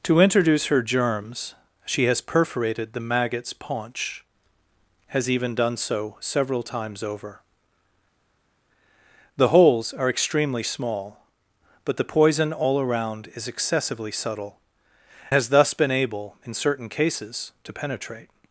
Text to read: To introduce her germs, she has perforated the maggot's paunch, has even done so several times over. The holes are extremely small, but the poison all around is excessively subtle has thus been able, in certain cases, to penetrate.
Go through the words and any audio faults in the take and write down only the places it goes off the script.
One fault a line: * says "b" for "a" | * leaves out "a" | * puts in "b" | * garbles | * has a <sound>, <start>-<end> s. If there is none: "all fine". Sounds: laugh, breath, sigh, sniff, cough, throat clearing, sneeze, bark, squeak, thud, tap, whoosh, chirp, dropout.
all fine